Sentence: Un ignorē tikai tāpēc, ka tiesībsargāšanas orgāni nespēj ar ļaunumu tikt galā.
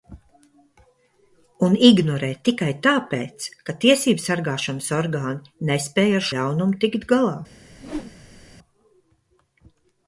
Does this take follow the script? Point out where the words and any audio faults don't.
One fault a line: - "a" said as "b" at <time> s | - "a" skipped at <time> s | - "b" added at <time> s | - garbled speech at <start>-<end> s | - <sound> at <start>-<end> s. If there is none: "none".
- whoosh at 7.7-8.6 s